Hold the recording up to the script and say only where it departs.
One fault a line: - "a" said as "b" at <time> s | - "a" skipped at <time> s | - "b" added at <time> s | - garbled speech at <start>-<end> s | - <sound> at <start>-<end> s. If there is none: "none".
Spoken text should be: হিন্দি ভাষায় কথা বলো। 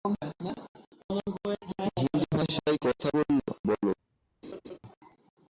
- laugh at 4.4-4.8 s